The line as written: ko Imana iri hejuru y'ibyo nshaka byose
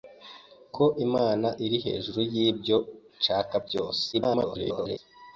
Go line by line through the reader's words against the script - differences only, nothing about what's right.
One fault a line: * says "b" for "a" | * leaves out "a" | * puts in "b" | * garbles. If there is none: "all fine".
* garbles